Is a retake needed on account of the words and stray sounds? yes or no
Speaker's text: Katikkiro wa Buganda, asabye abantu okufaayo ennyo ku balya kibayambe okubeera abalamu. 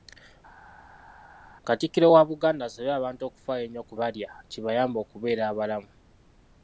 no